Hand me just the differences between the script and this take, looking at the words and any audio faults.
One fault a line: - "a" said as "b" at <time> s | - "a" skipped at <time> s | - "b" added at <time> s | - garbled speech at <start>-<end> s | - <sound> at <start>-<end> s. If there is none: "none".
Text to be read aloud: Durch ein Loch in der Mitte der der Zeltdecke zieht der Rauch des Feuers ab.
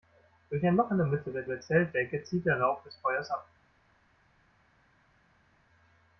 none